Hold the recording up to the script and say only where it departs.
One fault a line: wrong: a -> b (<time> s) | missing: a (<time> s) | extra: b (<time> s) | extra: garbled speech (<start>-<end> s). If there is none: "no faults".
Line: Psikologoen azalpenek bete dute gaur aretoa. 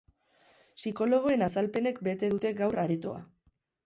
no faults